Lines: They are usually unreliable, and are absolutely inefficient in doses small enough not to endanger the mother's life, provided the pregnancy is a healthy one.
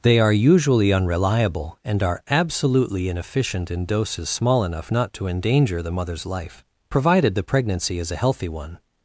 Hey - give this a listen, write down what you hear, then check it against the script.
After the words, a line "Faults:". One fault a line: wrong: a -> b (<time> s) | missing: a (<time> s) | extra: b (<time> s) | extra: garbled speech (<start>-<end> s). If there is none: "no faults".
They are usually unreliable, and are absolutely inefficient in doses small enough not to endanger the mother's life, provided the pregnancy is a healthy one.
Faults:
no faults